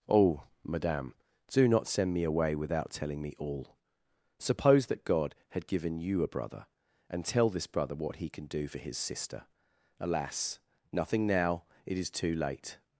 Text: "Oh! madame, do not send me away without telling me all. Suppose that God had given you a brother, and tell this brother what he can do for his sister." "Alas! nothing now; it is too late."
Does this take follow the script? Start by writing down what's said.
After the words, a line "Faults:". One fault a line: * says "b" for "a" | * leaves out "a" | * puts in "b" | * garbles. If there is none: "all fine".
"Oh! madame, do not send me away without telling me all. Suppose that God had given you a brother, and tell this brother what he can do for his sister." "Alas! nothing now; it is too late."
Faults:
all fine